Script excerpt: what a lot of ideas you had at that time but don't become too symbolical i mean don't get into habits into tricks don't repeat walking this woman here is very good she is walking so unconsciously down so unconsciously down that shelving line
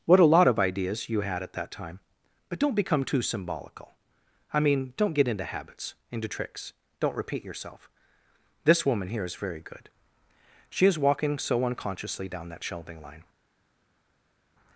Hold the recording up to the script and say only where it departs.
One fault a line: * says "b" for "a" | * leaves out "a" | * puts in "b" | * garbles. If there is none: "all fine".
* says "yourself" for "walking"
* leaves out "so unconsciously down"